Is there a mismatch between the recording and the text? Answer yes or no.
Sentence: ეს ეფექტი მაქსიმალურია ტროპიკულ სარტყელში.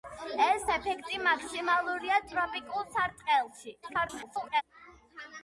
yes